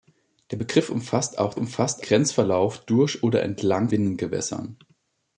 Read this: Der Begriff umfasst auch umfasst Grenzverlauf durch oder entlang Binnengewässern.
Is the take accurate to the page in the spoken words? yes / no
yes